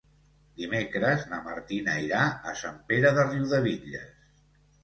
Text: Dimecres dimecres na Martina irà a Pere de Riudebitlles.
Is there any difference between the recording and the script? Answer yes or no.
yes